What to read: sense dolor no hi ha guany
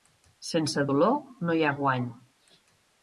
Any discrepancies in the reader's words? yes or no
no